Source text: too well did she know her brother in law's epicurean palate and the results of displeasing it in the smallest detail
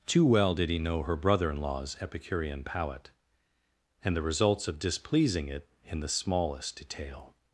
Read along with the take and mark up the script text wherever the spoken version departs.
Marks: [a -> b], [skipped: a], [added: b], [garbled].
too well did [she -> he] know her brother in law's epicurean palate and the results of displeasing it in the smallest detail